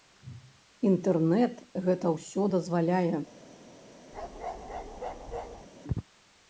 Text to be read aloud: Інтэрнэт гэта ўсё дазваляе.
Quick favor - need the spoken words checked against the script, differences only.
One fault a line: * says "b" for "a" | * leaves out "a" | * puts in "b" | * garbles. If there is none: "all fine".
all fine